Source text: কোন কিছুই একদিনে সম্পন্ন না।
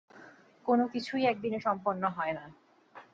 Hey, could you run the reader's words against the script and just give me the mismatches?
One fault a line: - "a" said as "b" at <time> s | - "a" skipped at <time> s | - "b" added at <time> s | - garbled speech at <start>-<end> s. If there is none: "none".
- "হয়" added at 2.1 s